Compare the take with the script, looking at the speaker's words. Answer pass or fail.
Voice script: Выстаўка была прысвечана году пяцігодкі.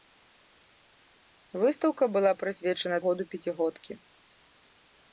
pass